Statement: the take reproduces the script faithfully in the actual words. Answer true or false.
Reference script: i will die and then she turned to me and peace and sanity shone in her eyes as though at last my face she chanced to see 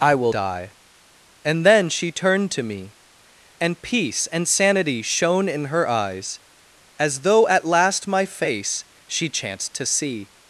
true